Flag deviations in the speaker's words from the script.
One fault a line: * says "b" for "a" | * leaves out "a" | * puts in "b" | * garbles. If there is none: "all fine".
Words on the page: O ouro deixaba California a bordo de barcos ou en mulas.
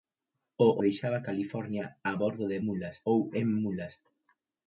* leaves out "ouro"
* says "mulas" for "barcos"